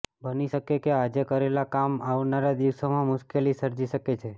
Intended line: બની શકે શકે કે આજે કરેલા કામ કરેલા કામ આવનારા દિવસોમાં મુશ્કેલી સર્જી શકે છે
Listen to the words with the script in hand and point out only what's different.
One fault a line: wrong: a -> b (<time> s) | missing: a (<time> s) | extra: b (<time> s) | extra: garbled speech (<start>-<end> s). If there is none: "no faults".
missing: શકે (0.8 s)
missing: કરેલા કામ (2.0 s)